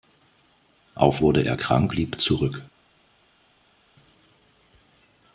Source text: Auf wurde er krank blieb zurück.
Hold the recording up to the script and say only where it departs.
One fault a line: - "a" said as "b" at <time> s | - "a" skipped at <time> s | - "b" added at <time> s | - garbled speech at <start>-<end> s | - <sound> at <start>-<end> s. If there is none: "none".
none